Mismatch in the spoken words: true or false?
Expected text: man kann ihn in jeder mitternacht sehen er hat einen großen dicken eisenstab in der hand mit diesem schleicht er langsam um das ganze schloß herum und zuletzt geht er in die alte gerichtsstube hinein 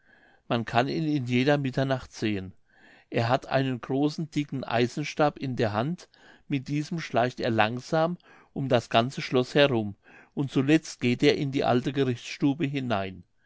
false